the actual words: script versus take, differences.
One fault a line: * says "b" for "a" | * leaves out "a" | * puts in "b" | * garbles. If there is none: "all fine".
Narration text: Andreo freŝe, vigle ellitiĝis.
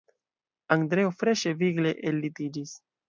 all fine